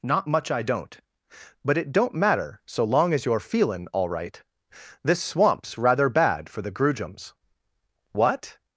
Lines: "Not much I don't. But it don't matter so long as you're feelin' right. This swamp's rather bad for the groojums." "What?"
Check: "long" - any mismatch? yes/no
no